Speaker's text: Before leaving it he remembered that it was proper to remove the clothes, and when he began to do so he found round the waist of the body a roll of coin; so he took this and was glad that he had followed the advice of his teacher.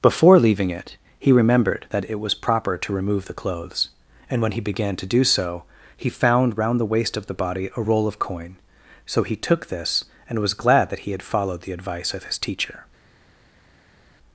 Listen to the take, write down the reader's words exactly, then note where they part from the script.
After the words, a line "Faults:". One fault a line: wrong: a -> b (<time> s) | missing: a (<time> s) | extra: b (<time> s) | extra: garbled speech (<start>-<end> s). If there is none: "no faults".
Before leaving it he remembered that it was proper to remove the clothes, and when he began to do so he found round the waist of the body a roll of coin; so he took this and was glad that he had followed the advice of his teacher.
Faults:
no faults